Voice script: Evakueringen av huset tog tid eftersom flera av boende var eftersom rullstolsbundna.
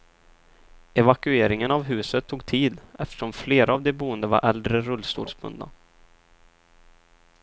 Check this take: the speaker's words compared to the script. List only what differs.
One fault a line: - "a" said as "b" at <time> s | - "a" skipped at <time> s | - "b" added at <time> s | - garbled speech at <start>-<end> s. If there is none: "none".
- "de" added at 3.8 s
- "eftersom" said as "äldre" at 4.4 s